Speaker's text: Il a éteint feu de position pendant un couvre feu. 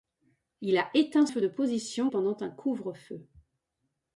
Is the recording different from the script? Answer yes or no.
no